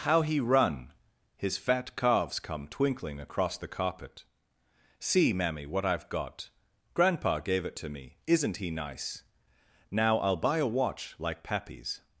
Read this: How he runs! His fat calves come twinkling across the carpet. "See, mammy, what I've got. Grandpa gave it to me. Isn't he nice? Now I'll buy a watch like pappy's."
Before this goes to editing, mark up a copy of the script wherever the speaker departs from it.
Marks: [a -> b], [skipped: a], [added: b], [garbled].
How he [runs! -> run] His fat calves come twinkling across the carpet. "See, mammy, what I've got. Grandpa gave it to me. Isn't he nice? Now I'll buy a watch like pappy's."